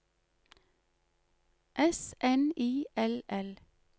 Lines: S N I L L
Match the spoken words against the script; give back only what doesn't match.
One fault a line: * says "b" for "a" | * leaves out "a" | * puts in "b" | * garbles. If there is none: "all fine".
all fine